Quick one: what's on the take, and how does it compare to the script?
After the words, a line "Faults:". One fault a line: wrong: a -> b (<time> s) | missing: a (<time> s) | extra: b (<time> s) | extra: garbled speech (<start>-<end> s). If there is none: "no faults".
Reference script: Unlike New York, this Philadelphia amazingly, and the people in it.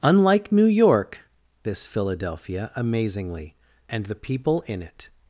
Unlike New York, this Philadelphia amazingly, and the people in it.
Faults:
no faults